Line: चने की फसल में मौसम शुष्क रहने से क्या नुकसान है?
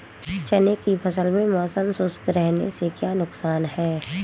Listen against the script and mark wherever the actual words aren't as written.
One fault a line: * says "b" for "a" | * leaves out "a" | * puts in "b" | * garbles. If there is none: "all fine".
all fine